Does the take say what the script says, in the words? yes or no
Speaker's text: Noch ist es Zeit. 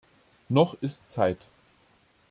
no